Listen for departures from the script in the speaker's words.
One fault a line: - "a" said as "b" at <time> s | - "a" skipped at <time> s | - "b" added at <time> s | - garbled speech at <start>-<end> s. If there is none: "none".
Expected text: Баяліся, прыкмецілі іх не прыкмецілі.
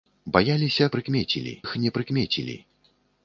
none